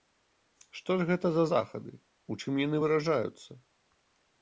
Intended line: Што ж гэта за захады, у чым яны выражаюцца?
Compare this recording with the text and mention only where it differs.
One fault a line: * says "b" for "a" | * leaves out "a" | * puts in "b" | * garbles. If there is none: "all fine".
all fine